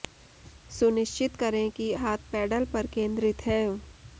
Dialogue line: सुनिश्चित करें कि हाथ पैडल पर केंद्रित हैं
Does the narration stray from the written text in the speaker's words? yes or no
no